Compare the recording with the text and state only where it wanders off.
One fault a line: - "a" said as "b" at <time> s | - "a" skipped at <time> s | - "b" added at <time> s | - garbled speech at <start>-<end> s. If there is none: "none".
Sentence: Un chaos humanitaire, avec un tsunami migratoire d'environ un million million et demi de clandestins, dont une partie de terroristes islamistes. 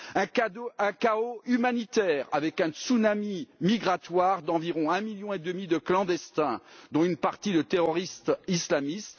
- "million" skipped at 5.3 s